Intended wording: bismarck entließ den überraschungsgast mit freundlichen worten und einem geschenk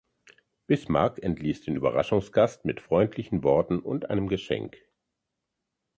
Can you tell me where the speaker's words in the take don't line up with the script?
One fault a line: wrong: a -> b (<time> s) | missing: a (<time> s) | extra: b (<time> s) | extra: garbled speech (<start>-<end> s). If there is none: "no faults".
no faults